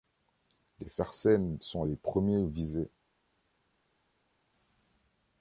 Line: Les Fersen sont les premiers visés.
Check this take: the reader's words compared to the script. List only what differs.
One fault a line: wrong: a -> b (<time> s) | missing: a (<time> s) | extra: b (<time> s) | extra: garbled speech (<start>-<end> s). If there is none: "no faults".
no faults